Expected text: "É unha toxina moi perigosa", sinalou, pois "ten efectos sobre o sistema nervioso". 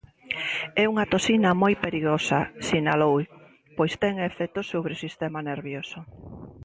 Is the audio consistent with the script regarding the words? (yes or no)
yes